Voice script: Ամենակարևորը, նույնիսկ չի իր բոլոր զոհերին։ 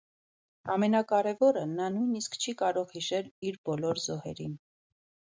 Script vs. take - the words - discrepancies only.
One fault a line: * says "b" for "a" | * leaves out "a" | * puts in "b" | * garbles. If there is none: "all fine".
* puts in "նա"
* puts in "կարող հիշել"